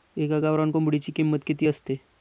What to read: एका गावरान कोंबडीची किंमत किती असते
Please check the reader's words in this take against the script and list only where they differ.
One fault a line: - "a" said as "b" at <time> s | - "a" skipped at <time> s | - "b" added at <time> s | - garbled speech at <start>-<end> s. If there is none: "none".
none